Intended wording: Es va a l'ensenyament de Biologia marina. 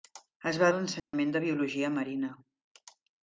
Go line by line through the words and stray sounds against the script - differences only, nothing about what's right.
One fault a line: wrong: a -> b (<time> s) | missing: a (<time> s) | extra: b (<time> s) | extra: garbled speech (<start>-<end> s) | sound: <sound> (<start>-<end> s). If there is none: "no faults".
sound: dropout (1.0-1.1 s)